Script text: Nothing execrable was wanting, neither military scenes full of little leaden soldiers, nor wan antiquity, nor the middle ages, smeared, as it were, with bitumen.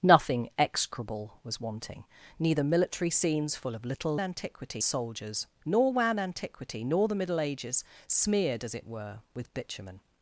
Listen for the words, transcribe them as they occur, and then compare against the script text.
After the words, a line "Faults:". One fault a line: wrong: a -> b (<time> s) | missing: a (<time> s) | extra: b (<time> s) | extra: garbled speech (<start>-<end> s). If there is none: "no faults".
Nothing execrable was wanting, neither military scenes full of little antiquity soldiers, nor wan antiquity, nor the middle ages, smeared, as it were, with bitumen.
Faults:
wrong: leaden -> antiquity (4.2 s)